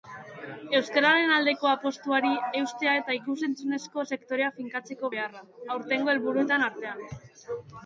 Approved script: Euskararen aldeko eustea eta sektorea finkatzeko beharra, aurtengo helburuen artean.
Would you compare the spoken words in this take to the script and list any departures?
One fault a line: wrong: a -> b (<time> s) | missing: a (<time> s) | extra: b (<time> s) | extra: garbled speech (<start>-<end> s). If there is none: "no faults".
extra: apustuari (1.7 s)
extra: ikus entzunezko (3.2 s)